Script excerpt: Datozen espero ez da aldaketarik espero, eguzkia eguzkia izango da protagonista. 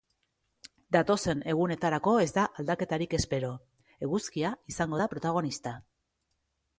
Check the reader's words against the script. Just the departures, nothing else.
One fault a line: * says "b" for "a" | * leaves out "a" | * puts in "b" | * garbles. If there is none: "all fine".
* says "egunetarako" for "espero"
* leaves out "eguzkia"